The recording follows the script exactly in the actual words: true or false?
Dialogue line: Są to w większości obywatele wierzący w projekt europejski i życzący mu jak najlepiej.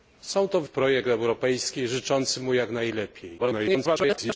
false